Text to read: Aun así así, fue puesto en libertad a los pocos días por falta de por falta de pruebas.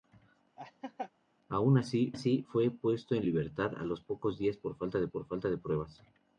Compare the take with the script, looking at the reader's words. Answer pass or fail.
pass